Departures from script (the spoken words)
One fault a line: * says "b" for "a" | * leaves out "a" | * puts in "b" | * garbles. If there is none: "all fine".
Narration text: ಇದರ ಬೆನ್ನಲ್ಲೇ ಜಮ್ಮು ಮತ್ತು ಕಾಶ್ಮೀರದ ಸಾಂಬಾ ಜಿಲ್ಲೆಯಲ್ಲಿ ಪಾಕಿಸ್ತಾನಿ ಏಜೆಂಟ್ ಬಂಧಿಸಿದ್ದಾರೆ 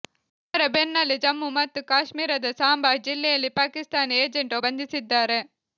all fine